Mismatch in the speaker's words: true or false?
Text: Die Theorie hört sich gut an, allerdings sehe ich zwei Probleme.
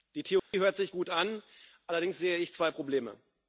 false